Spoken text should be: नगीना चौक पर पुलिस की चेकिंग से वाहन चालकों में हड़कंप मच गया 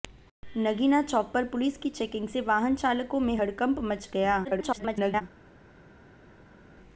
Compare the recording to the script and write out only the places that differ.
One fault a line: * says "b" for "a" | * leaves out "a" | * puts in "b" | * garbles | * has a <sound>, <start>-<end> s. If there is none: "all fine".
* garbles